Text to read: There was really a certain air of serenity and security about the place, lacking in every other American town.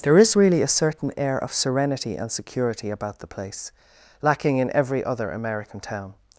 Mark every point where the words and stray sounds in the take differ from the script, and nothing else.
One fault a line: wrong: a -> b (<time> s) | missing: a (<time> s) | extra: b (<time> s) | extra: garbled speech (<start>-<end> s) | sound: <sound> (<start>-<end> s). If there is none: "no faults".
wrong: was -> is (0.2 s)